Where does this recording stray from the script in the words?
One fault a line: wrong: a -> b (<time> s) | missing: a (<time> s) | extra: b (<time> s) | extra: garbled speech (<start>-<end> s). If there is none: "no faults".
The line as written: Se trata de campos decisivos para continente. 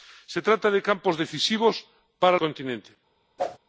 no faults